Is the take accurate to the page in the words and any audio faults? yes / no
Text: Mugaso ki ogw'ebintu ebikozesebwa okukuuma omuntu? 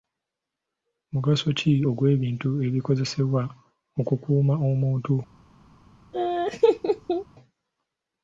no